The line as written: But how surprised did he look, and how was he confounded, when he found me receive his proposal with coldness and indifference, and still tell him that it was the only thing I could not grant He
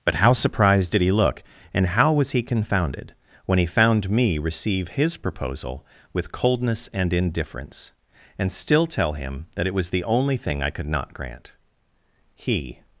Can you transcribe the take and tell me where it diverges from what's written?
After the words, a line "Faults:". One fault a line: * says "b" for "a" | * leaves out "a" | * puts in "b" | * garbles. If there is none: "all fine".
But how surprised did he look, and how was he confounded, when he found me receive his proposal with coldness and indifference, and still tell him that it was the only thing I could not grant He
Faults:
all fine